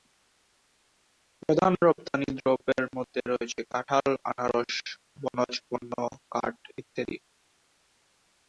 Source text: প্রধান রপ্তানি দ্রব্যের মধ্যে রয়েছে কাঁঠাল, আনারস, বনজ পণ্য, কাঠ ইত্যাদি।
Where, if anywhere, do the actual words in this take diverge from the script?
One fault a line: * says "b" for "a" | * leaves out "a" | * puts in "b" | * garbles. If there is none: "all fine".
all fine